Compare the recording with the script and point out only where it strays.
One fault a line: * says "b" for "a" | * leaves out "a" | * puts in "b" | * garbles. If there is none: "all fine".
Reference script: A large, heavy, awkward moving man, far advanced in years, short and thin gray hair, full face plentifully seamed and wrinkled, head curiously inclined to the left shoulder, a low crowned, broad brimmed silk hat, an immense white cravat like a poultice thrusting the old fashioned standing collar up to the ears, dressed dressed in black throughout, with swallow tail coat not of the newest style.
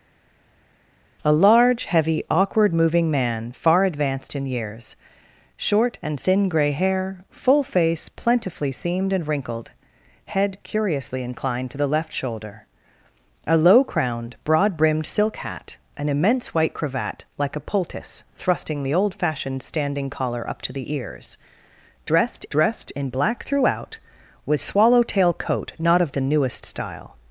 all fine